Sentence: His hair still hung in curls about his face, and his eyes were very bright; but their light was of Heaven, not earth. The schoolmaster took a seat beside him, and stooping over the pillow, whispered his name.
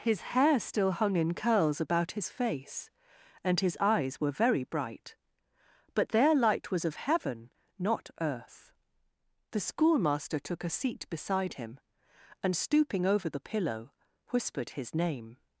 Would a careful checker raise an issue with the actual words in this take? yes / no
no